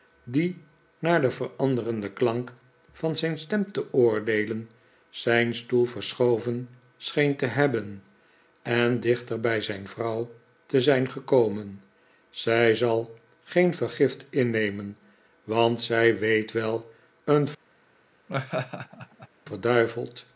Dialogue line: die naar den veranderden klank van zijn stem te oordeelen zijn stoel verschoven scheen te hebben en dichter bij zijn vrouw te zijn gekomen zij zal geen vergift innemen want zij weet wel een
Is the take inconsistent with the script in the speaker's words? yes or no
no